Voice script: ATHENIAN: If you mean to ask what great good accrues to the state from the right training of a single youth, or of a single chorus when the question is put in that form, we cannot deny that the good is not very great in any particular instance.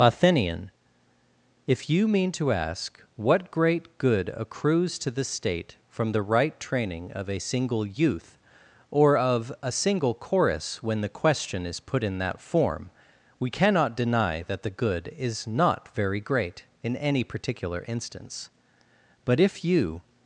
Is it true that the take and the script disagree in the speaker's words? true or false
true